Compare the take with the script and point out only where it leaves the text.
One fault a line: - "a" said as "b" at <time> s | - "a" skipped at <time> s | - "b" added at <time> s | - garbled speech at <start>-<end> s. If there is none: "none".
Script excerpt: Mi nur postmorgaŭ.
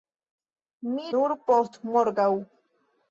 none